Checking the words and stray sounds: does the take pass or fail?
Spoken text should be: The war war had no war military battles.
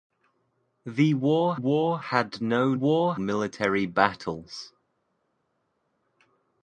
pass